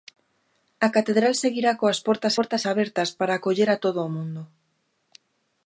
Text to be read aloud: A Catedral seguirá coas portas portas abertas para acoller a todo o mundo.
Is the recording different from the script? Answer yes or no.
no